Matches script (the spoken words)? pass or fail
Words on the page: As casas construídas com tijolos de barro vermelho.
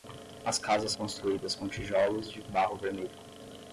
pass